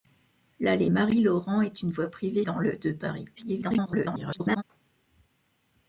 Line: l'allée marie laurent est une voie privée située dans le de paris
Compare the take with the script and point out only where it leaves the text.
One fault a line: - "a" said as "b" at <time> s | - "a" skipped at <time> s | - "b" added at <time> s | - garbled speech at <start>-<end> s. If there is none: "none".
- "située" skipped at 2.4 s
- garbled speech at 3.4-4.6 s